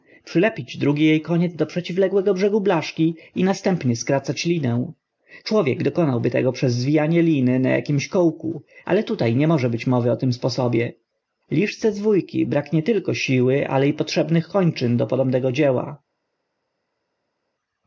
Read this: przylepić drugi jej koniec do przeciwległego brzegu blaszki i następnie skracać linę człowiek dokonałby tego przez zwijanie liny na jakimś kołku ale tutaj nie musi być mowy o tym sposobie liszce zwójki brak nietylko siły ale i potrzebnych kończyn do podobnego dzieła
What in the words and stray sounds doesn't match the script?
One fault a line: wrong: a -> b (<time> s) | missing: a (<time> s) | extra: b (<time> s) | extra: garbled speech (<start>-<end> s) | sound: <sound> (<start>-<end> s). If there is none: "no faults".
wrong: musi -> może (9.5 s)